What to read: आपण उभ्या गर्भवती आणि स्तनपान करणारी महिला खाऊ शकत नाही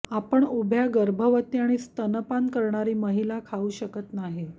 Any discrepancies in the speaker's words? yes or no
no